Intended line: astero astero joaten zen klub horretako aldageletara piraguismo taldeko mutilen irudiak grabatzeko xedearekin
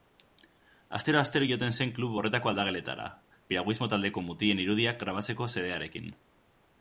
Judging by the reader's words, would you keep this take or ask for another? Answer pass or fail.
pass